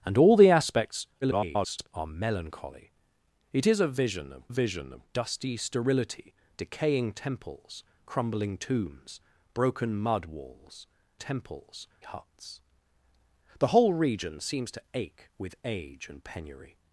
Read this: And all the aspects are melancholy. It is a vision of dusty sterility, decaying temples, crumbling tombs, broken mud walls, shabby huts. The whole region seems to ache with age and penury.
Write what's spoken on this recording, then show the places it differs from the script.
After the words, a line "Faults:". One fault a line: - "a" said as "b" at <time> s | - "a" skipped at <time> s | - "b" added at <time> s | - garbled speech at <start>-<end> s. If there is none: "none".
And all the aspects [garbled] are melancholy. It is a vision of vision of dusty sterility, decaying temples, crumbling tombs, broken mud walls, temples huts. The whole region seems to ache with age and penury.
Faults:
- garbled speech at 1.2-1.9 s
- "vision of" added at 4.5 s
- "shabby" said as "temples" at 11.2 s